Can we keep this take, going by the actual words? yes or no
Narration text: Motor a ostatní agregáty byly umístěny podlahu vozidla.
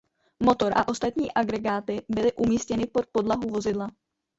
no